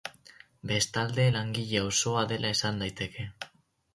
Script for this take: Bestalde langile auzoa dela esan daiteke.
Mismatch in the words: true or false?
false